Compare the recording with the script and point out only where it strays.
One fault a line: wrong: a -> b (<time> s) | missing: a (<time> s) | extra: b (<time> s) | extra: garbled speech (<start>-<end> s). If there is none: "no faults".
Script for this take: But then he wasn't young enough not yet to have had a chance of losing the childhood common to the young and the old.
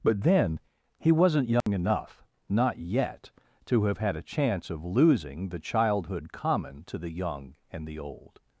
no faults